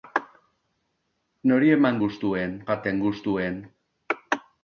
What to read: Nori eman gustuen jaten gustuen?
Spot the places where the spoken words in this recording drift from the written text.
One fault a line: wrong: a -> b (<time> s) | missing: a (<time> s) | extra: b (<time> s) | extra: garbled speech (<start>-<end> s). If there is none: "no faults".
no faults